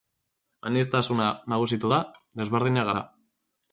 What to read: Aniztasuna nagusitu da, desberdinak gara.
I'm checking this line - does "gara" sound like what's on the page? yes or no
yes